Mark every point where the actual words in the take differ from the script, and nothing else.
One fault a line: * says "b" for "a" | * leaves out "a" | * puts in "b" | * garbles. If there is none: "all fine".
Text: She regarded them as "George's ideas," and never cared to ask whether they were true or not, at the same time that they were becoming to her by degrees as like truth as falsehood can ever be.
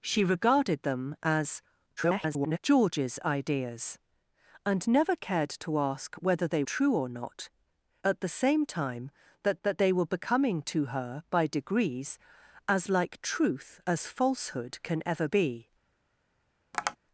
* garbles
* leaves out "were"
* puts in "that"